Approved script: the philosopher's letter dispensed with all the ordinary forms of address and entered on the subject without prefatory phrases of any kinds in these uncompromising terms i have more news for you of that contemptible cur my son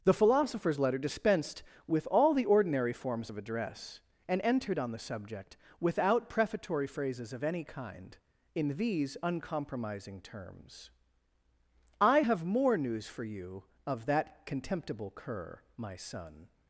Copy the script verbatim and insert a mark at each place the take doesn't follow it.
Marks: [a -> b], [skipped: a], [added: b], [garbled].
the philosopher's letter dispensed with all the ordinary forms of address and entered on the subject without prefatory phrases of any [kinds -> kind] in these uncompromising terms i have more news for you of that contemptible cur my son